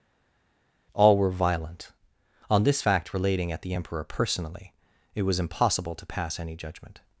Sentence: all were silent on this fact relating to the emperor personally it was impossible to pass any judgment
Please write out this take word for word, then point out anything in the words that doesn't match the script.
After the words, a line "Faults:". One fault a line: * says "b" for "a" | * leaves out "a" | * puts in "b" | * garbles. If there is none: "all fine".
all were violent on this fact relating at the emperor personally it was impossible to pass any judgment
Faults:
* says "violent" for "silent"
* says "at" for "to"